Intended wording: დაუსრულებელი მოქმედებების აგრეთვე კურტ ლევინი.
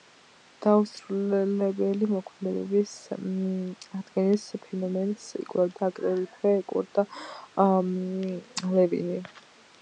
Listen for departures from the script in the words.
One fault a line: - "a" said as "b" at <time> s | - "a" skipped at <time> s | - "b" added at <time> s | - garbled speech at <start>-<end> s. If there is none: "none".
- "აღდგენის ფენომენს იკვლევდა" added at 4.0 s